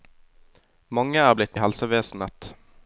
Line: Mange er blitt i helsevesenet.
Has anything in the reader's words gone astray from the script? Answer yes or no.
no